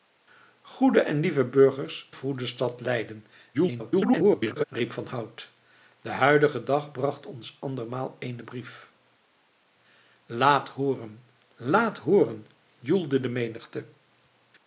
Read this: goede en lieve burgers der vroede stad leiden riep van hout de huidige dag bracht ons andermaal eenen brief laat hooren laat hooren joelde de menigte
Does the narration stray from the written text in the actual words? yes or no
yes